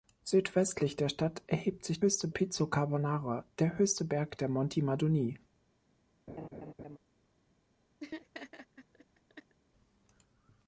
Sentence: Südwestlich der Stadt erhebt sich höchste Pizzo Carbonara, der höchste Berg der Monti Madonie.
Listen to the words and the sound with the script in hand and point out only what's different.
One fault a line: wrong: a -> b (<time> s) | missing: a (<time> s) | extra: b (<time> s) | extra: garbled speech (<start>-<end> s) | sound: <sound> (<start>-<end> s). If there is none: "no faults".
sound: laugh (6.3-7.0 s)
sound: laugh (8.0-9.6 s)